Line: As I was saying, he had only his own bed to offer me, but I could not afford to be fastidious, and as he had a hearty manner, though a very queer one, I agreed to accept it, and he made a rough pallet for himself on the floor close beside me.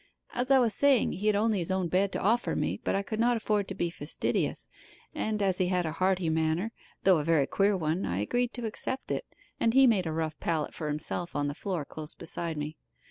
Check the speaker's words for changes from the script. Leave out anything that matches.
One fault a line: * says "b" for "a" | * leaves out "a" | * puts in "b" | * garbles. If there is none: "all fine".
all fine